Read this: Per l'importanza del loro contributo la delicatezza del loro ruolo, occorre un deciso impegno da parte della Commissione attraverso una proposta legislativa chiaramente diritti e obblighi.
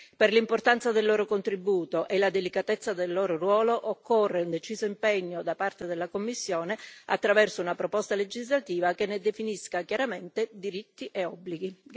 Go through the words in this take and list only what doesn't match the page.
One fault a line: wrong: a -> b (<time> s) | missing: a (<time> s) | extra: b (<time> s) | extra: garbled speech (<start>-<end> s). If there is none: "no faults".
extra: e (2.1 s)
extra: che ne definisca (8.9 s)